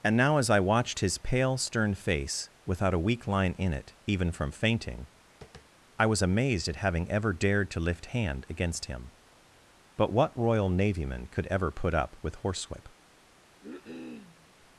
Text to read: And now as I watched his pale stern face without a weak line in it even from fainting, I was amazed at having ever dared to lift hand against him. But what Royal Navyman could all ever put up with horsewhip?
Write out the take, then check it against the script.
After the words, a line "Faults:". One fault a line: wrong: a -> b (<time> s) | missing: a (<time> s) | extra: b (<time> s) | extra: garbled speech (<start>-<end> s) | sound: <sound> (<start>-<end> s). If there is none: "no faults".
And now as I watched his pale stern face without a weak line in it even from fainting, I was amazed at having ever dared to lift hand against him. But what Royal Navyman could ever put up with horsewhip?
Faults:
sound: tap (5.4-5.7 s)
missing: all (11.5 s)
sound: cough (13.6-14.5 s)